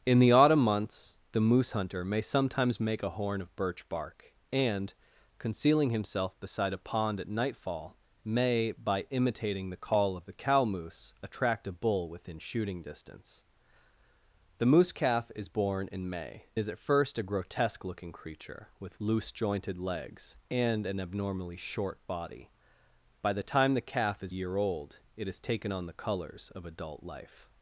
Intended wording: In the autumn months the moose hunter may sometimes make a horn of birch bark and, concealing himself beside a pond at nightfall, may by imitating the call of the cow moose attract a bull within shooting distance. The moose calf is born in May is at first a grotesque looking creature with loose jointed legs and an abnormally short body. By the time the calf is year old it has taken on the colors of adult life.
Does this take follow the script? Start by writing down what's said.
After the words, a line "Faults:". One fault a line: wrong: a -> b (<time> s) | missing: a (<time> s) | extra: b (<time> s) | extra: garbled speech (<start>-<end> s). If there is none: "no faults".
In the autumn months the moose hunter may sometimes make a horn of birch bark and, concealing himself beside a pond at nightfall, may by imitating the call of the cow moose attract a bull within shooting distance. The moose calf is born in May is at first a grotesque looking creature with loose jointed legs and an abnormally short body. By the time the calf is year old it has taken on the colors of adult life.
Faults:
no faults